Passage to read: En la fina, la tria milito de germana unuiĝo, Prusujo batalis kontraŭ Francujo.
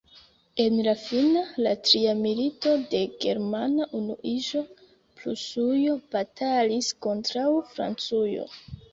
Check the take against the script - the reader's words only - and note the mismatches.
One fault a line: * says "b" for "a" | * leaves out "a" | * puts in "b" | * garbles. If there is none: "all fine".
all fine